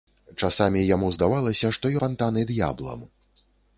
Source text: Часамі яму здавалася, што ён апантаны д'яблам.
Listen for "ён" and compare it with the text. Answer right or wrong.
wrong